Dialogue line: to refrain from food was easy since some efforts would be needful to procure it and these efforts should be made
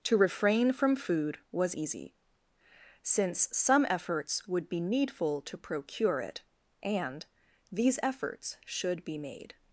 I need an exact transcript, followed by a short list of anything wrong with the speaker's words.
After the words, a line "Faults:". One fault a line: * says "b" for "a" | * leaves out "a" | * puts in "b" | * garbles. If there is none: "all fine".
to refrain from food was easy since some efforts would be needful to procure it and these efforts should be made
Faults:
all fine